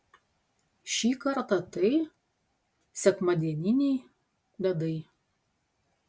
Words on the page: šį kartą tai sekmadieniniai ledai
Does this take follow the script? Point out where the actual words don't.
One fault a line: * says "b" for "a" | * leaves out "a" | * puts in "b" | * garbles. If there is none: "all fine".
all fine